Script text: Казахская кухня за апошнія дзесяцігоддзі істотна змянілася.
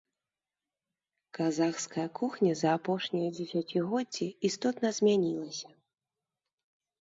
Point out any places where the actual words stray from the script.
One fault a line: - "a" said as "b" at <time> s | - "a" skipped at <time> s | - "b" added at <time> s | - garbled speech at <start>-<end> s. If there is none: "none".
none